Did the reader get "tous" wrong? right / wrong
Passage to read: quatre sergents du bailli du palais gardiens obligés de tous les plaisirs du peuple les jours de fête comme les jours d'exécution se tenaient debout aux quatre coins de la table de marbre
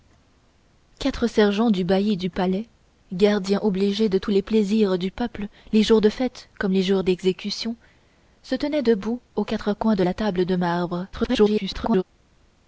right